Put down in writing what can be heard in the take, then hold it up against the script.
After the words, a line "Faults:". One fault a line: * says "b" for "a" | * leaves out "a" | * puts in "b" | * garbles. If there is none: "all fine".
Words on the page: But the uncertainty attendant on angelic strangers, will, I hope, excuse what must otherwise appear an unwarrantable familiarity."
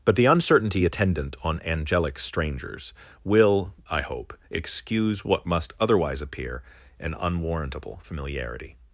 But the uncertainty attendant on angelic strangers, will, I hope, excuse what must otherwise appear an unwarrantable familiarity."
Faults:
all fine